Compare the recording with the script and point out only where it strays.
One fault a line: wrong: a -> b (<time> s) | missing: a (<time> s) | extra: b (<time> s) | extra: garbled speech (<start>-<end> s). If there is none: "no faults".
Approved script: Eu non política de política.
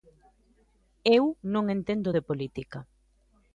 wrong: política -> entendo (1.8 s)